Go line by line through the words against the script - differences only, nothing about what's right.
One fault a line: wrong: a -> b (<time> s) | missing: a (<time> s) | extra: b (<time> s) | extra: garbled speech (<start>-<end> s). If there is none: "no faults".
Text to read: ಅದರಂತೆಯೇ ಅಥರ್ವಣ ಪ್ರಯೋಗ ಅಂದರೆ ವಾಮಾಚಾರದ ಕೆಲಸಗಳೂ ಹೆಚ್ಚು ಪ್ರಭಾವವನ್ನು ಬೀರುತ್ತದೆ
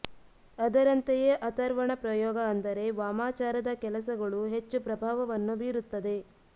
no faults